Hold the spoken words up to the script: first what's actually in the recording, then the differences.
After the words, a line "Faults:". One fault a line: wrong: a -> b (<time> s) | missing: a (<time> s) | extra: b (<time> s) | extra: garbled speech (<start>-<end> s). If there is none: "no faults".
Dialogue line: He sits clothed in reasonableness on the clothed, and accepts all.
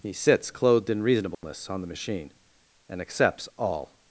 He sits clothed in reasonableness on the machine, and accepts all.
Faults:
wrong: clothed -> machine (1.9 s)